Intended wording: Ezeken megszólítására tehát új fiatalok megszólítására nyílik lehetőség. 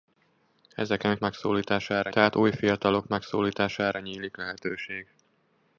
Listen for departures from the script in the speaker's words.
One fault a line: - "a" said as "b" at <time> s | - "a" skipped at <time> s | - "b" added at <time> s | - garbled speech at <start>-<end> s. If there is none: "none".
none